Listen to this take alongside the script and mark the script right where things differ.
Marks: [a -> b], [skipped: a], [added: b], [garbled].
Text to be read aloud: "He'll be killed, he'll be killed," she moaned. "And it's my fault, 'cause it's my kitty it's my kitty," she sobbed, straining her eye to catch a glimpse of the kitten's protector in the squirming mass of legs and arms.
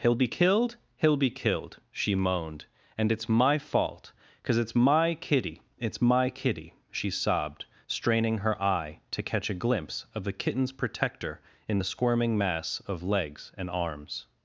"He'll be killed, he'll be killed," she moaned. "And it's my fault, 'cause it's my kitty it's my kitty," she sobbed, straining her eye to catch a glimpse of the kitten's protector in the squirming mass of legs and arms.